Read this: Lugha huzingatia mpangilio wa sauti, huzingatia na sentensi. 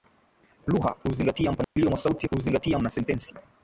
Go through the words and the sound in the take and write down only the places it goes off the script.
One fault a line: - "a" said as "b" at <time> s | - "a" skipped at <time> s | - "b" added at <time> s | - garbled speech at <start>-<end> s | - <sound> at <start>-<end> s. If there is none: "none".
- dropout at 1.6-1.8 s